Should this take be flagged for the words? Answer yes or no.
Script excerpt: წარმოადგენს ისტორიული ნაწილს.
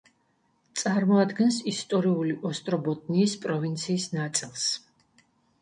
yes